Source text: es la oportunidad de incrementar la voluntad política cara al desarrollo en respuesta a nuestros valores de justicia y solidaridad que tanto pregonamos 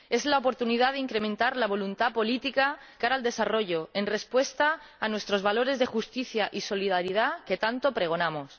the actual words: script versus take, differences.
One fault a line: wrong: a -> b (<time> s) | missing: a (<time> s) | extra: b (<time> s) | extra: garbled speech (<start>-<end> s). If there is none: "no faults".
no faults